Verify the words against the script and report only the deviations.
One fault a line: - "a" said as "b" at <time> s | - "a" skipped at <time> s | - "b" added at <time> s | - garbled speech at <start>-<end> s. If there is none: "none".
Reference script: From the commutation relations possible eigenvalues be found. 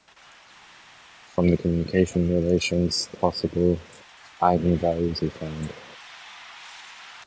none